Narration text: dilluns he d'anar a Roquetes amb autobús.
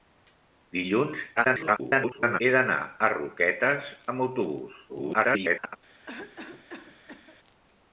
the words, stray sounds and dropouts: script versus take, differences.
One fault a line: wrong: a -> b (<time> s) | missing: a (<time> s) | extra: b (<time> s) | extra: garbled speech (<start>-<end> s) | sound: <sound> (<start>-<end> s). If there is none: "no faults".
extra: garbled speech (1.4-2.4 s)
extra: garbled speech (4.9-5.8 s)
sound: cough (6.1-7.4 s)